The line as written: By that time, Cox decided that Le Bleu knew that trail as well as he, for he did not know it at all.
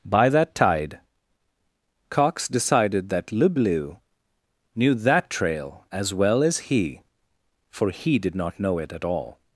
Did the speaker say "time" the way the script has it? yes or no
no